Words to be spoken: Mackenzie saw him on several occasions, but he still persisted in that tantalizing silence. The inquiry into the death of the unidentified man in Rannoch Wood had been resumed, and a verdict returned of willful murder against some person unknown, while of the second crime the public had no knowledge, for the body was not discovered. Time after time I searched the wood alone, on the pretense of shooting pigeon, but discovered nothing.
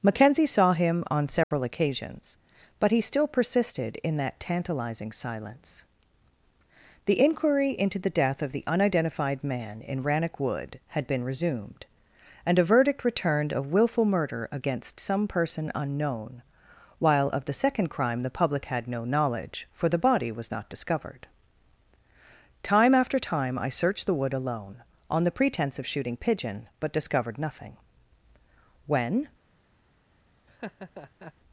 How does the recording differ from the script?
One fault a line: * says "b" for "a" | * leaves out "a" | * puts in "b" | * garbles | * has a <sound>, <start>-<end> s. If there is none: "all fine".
* has a dropout, 1.4-1.5 s
* puts in "When"
* has a laugh, 30.5-31.3 s